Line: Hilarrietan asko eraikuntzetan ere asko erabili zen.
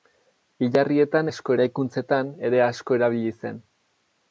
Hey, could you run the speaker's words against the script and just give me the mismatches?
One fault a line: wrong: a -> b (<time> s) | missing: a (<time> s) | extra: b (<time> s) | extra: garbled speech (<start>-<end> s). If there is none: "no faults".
no faults